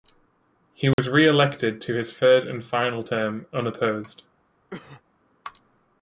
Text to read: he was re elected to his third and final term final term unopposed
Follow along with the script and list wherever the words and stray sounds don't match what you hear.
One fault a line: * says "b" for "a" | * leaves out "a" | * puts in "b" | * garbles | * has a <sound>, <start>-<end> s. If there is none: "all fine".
* has a dropout, 0.9-1.0 s
* leaves out "final term"
* has a cough, 4.7-5.0 s